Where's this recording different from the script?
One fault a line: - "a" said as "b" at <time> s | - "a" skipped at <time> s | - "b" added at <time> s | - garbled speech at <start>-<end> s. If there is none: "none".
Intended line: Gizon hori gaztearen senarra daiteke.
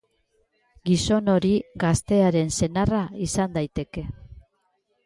- "izan" added at 3.3 s